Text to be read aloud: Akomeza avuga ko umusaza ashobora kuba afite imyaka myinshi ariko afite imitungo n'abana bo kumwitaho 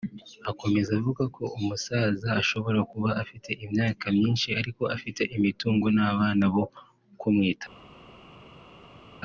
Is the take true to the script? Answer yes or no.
yes